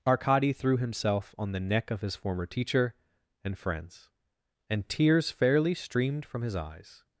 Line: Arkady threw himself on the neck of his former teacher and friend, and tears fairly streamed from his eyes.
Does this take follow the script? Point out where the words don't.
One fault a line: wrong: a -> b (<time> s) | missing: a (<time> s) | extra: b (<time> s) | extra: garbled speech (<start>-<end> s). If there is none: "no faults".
wrong: friend -> friends (3.6 s)